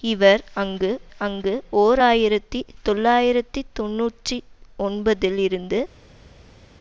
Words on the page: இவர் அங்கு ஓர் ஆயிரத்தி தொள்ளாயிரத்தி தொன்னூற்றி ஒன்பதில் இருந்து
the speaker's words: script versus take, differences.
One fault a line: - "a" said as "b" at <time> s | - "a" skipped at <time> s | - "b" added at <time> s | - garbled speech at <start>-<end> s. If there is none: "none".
- "அங்கு" added at 1.2 s